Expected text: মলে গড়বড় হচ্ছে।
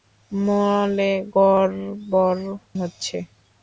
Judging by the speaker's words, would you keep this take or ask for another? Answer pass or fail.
pass